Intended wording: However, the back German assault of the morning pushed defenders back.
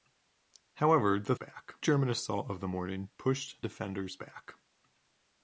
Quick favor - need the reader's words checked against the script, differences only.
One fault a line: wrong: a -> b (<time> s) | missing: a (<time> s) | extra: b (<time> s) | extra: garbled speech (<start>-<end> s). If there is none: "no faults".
no faults